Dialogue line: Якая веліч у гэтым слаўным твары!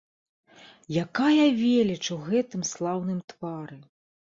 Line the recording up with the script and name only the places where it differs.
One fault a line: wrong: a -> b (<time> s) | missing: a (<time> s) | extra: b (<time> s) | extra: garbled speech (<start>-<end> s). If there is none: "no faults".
no faults